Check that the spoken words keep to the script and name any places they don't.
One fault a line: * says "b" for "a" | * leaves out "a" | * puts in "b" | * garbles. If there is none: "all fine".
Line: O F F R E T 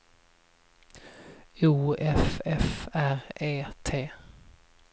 all fine